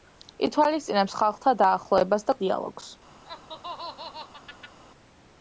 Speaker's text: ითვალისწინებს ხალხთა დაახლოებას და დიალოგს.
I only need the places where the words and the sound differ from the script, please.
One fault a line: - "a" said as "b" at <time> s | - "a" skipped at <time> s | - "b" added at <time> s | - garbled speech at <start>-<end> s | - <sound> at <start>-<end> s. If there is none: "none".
- laugh at 3.2-4.8 s